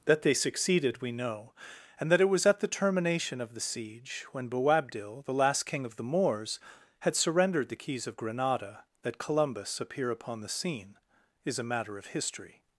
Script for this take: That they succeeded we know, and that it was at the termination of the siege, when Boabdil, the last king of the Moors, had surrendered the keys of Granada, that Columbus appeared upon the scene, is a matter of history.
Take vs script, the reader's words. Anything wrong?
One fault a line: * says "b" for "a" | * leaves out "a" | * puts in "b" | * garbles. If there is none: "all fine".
* says "appear" for "appeared"